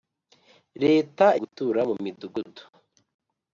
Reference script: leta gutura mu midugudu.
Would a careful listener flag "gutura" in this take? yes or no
no